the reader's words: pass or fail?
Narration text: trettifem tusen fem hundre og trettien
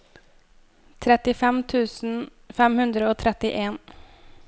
pass